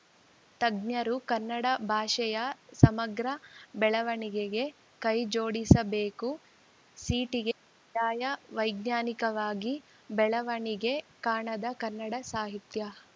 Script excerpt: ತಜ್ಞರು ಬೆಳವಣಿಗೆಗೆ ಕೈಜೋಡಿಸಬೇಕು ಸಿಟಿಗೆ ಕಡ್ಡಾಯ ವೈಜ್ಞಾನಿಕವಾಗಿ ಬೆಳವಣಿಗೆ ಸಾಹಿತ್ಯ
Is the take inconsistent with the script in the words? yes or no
yes